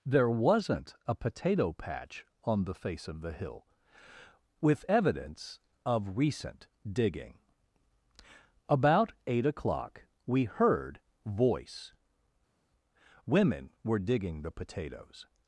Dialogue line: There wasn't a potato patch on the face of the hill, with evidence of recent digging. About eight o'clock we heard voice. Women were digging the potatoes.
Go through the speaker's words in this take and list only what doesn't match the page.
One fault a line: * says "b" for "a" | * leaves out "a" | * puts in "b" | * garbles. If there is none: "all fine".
all fine